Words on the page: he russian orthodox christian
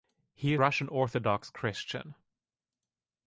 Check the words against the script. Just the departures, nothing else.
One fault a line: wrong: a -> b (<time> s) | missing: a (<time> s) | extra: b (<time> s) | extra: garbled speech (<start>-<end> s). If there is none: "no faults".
no faults